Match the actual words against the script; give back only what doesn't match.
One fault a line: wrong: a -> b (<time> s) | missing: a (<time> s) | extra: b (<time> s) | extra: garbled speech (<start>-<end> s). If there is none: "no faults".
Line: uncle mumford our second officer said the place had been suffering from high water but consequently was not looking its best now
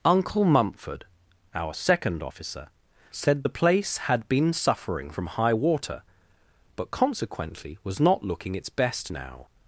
no faults